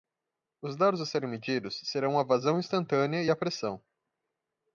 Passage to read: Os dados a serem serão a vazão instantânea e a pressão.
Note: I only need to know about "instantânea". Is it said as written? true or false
true